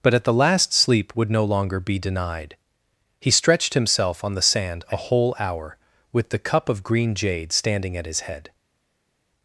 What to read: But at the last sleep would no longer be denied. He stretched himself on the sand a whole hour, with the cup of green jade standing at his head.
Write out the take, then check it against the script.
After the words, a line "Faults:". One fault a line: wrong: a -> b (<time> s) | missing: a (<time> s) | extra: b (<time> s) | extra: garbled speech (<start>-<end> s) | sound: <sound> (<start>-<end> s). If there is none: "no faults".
But at the last sleep would no longer be denied. He stretched himself on the sand a whole hour, with the cup of green jade standing at his head.
Faults:
no faults